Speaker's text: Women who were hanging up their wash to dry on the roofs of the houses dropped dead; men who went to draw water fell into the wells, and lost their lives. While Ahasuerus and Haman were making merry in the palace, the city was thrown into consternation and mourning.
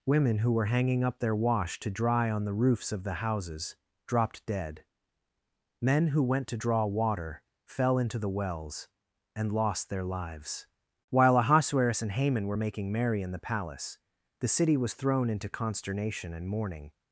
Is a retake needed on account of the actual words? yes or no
no